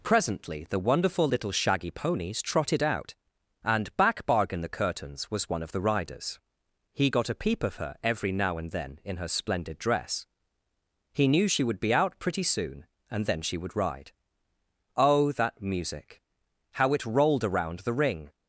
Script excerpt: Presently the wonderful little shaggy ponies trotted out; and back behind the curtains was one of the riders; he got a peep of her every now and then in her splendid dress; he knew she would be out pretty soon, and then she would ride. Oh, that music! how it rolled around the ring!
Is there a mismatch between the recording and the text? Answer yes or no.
yes